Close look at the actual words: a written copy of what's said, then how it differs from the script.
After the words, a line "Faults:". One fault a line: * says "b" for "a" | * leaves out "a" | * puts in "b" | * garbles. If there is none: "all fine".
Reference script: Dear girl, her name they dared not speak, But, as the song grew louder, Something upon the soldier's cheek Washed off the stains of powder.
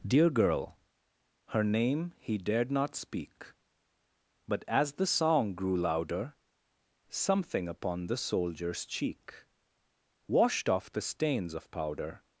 Dear girl, her name he dared not speak, But, as the song grew louder, Something upon the soldier's cheek Washed off the stains of powder.
Faults:
* says "he" for "they"